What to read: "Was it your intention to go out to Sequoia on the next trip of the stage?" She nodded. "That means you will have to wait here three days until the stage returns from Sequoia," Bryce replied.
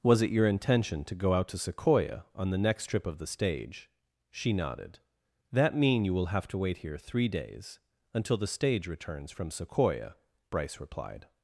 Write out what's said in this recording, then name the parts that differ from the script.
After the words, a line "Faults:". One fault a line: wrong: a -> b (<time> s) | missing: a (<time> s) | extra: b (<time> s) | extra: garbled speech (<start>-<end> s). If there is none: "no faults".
"Was it your intention to go out to Sequoia on the next trip of the stage?" She nodded. "That mean you will have to wait here three days until the stage returns from Sequoia," Bryce replied.
Faults:
wrong: means -> mean (5.8 s)